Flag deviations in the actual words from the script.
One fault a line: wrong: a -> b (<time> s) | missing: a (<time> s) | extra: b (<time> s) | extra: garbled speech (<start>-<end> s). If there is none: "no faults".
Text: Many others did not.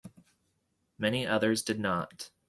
no faults